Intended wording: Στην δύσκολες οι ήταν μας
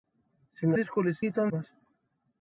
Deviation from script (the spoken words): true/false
false